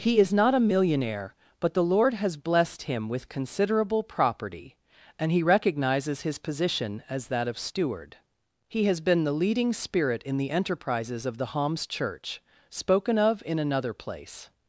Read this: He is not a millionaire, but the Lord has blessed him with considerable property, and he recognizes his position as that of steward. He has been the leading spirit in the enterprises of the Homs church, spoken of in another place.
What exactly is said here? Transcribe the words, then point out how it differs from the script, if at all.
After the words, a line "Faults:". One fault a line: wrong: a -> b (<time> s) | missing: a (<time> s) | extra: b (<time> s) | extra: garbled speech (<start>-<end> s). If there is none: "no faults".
He is not a millionaire, but the Lord has blessed him with considerable property, and he recognizes his position as that of steward. He has been the leading spirit in the enterprises of the Homs church, spoken of in another place.
Faults:
no faults